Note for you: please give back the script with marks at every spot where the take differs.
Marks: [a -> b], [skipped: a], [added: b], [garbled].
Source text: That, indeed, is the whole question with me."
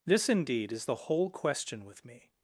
[That, -> This] indeed, is the whole question with me."